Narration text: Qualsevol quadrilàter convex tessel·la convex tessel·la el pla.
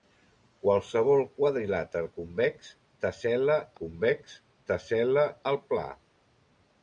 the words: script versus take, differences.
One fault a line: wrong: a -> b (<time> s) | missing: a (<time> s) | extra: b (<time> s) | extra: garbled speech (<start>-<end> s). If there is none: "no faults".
no faults